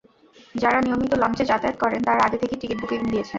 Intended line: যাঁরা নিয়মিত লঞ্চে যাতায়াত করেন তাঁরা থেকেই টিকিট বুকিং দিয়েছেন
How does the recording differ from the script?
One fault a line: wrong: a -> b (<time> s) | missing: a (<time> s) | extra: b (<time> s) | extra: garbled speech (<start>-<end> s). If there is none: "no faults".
extra: আগে (2.2 s)